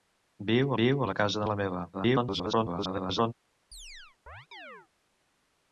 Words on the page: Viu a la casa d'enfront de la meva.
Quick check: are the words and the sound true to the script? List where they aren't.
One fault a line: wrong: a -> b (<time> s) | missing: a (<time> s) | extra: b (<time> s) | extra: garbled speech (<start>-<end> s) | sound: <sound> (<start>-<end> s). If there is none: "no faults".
extra: viu (0.8 s)
missing: d'enfront (1.4 s)
extra: garbled speech (1.9-3.3 s)
sound: chirp (3.7-4.9 s)